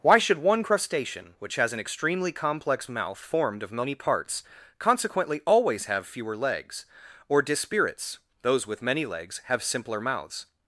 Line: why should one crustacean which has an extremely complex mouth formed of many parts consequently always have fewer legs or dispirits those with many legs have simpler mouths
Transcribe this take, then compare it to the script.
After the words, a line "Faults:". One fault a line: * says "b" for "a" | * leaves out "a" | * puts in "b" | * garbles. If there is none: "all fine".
why should one crustacean which has an extremely complex mouth formed of many parts consequently always have fewer legs or dispirits those with many legs have simpler mouths
Faults:
all fine